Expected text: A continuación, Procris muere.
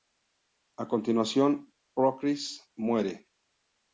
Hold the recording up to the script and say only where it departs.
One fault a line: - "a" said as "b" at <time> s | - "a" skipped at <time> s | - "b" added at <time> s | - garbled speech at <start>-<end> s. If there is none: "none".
none